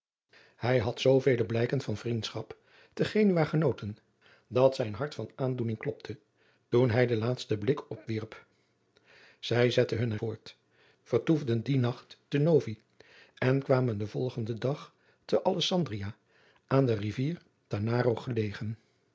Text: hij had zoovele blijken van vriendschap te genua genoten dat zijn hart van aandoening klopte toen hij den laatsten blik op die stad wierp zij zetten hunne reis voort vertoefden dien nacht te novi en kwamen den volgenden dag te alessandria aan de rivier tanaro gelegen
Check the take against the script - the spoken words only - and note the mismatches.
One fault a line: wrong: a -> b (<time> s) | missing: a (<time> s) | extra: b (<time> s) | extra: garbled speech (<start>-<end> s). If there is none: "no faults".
missing: die stad (8.0 s)
missing: reis (10.2 s)